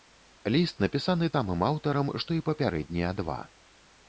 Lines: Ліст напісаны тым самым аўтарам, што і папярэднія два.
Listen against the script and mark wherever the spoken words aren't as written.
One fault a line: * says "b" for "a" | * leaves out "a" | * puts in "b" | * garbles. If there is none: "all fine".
* leaves out "тым"